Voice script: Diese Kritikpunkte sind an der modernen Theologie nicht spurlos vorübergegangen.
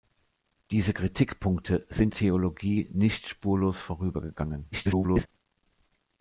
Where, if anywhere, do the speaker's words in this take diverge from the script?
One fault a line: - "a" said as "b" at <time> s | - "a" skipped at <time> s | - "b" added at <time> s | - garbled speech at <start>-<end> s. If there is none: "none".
- "an der modernen" skipped at 2.1 s
- garbled speech at 4.7-5.3 s